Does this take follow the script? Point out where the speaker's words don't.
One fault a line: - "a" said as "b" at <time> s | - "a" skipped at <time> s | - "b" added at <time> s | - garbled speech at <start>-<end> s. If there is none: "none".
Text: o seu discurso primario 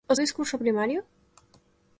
- "seu" skipped at 0.1 s